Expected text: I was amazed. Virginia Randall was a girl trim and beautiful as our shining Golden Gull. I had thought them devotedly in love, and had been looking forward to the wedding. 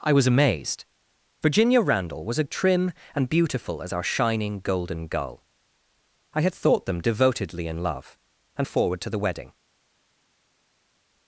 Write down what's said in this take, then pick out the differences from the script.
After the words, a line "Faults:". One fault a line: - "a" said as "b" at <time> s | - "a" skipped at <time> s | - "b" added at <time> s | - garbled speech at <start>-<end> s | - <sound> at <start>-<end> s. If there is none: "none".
I was amazed. Virginia Randall was a trim and beautiful as our shining Golden Gull. I had thought them devotedly in love, and forward to the wedding.
Faults:
- "girl" skipped at 2.4 s
- "had been looking" skipped at 8.7 s